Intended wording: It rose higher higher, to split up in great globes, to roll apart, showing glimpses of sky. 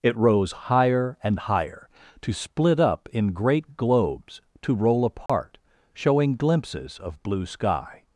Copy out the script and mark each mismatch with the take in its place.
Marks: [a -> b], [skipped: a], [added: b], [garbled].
It rose higher [added: and] higher, to split up in great globes, to roll apart, showing glimpses of [added: blue] sky.